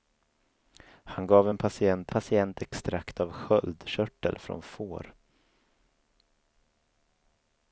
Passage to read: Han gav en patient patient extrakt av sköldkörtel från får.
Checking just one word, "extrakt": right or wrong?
right